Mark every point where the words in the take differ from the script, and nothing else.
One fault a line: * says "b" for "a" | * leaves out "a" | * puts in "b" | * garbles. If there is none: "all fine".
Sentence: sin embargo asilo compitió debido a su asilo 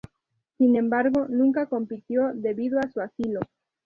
* says "nunca" for "asilo"